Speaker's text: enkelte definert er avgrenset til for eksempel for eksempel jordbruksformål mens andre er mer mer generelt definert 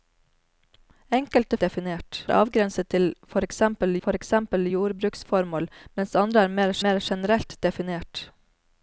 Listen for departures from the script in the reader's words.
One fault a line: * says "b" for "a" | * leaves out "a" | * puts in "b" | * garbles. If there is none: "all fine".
all fine